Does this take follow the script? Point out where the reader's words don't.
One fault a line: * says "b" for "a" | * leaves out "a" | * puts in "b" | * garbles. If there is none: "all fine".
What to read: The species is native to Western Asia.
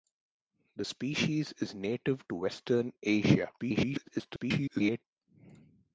* garbles